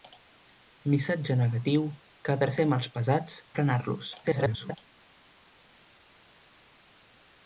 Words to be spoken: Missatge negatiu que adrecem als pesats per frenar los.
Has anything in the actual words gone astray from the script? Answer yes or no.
yes